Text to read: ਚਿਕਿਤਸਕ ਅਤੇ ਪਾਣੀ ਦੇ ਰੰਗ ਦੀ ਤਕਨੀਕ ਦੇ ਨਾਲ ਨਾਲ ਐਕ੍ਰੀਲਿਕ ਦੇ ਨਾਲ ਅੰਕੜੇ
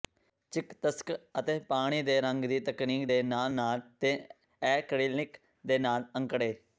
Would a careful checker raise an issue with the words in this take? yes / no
yes